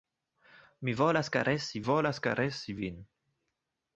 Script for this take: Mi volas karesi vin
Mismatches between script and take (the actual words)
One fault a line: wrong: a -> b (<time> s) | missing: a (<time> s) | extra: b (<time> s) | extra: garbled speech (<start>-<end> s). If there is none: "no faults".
extra: volas karesi (1.9 s)